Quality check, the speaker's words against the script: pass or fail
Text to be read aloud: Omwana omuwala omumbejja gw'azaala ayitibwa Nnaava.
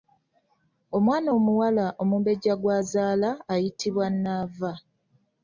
pass